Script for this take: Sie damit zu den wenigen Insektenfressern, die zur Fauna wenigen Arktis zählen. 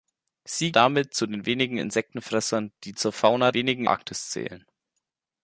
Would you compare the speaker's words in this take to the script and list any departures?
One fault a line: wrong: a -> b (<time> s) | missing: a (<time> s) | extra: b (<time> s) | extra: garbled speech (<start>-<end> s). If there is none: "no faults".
no faults